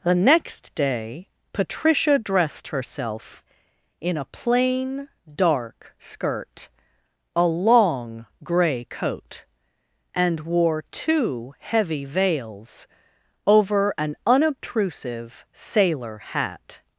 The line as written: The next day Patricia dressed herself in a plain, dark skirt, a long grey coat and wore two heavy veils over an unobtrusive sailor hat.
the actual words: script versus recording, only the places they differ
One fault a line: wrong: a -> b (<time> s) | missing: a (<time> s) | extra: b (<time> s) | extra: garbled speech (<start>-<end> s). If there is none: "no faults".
no faults